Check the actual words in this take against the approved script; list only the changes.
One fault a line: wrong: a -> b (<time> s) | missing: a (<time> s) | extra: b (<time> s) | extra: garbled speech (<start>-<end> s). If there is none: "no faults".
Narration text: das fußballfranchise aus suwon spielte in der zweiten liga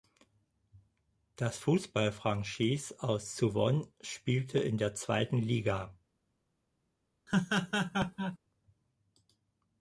no faults